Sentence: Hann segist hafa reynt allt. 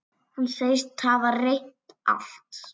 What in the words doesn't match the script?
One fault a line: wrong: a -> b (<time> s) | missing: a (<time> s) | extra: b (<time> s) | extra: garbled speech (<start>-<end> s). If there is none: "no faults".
no faults